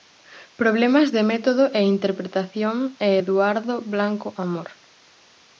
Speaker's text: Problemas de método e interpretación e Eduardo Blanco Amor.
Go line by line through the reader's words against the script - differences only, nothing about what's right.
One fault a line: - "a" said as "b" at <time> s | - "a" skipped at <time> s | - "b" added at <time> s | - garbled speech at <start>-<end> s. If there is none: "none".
none